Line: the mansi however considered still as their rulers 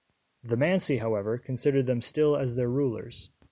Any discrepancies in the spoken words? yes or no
yes